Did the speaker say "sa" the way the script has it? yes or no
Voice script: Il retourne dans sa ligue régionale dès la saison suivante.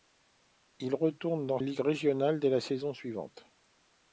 no